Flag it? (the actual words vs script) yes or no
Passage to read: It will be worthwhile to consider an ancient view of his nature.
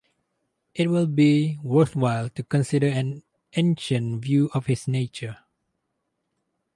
no